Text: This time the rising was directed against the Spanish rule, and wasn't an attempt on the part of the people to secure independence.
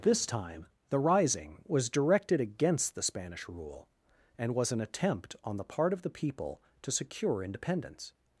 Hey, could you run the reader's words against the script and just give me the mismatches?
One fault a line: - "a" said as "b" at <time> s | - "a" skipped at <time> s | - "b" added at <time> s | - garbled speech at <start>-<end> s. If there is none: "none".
- "wasn't" said as "was" at 4.5 s